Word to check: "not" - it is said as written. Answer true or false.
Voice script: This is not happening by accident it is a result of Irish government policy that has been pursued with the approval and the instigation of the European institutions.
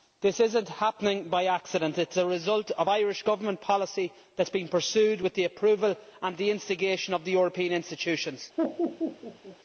true